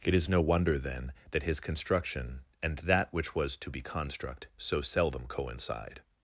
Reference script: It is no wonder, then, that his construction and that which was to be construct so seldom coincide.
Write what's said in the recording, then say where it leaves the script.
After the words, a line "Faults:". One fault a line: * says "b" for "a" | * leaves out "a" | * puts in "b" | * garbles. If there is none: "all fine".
It is no wonder, then, that his construction and that which was to be construct so seldom coincide.
Faults:
all fine